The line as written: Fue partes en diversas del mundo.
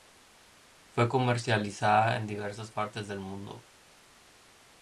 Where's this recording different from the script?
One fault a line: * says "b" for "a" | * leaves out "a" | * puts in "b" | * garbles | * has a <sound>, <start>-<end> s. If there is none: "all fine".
* says "comercializada" for "partes"
* puts in "partes"